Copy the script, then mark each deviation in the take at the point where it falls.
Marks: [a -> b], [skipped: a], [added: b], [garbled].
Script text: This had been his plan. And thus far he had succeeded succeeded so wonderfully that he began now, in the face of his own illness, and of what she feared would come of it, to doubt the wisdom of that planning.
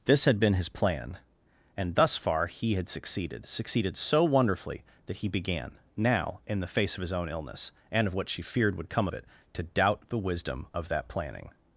This had been his plan. And thus far he had succeeded succeeded so wonderfully that he began now, in the face of his own illness, and of what she feared would come of it, to doubt the wisdom of that planning.